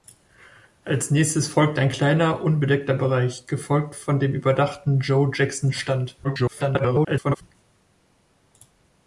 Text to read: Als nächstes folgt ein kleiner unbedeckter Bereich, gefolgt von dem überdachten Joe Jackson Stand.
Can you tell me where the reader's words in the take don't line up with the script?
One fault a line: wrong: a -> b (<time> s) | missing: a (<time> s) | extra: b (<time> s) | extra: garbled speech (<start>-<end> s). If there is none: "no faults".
extra: garbled speech (6.2-7.4 s)